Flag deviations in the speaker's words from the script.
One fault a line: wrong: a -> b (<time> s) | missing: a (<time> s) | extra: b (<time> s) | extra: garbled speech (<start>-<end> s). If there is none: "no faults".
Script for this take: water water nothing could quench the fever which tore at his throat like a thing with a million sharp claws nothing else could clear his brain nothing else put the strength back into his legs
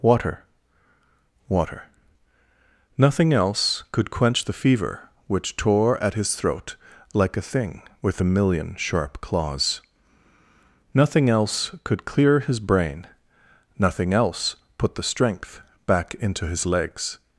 extra: else (3.3 s)